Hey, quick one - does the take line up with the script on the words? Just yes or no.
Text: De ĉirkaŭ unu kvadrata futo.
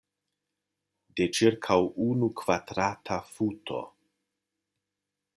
yes